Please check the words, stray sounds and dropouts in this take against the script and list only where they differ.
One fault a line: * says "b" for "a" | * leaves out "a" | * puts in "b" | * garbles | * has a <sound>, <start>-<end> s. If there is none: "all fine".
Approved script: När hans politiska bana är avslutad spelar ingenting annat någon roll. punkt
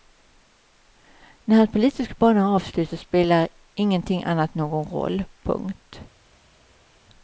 all fine